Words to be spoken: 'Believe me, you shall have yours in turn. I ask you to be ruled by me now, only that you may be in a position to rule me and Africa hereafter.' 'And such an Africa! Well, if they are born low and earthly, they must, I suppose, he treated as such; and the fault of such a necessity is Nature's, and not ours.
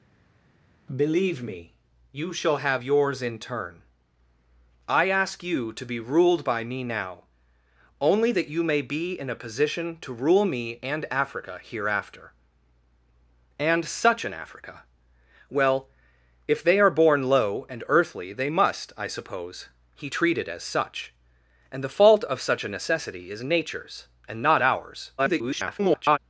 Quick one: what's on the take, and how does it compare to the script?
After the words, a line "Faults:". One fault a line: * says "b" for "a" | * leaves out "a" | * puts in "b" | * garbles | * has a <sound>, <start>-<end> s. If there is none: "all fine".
'Believe me, you shall have yours in turn. I ask you to be ruled by me now, only that you may be in a position to rule me and Africa hereafter.' 'And such an Africa! Well, if they are born low and earthly, they must, I suppose, he treated as such; and the fault of such a necessity is Nature's, and not ours. [garbled]
Faults:
* garbles